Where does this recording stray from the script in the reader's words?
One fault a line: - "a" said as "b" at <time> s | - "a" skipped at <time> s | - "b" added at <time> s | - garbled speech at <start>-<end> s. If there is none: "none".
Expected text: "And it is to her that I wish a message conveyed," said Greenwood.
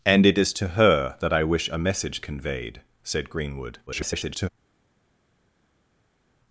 - garbled speech at 3.9-4.5 s